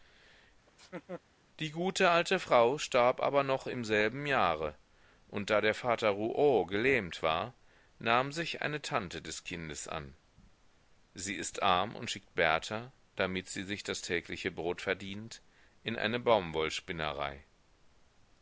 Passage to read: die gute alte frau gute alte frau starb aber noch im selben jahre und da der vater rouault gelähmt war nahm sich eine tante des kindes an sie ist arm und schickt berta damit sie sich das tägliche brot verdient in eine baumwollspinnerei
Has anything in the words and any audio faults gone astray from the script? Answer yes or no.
yes